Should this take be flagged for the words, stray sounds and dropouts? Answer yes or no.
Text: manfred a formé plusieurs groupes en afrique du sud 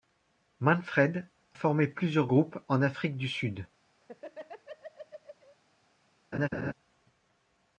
yes